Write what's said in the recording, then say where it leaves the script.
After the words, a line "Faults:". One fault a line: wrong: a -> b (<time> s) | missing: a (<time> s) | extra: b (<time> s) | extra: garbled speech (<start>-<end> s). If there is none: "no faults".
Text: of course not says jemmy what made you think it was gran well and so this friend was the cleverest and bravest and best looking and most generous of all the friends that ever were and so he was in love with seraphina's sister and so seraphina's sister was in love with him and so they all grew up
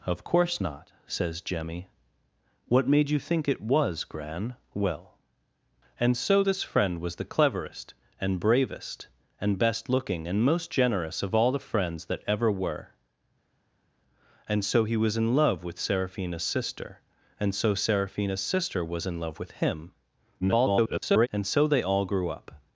of course not says jemmy what made you think it was gran well and so this friend was the cleverest and bravest and best looking and most generous of all the friends that ever were and so he was in love with seraphina's sister and so seraphina's sister was in love with him [garbled] and so they all grew up
Faults:
extra: garbled speech (20.4-21.3 s)